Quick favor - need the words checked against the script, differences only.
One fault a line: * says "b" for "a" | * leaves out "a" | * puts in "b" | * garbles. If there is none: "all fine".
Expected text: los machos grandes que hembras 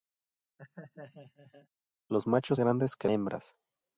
all fine